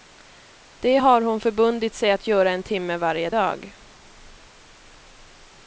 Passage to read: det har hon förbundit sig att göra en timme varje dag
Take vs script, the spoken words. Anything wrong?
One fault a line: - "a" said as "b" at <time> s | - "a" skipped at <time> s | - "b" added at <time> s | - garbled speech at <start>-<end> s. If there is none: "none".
none